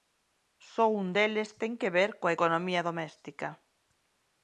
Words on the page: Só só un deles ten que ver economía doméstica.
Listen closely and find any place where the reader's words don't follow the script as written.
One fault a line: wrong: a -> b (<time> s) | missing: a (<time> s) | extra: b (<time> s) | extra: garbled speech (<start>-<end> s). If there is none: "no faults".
missing: só (0.8 s)
extra: coa (2.2 s)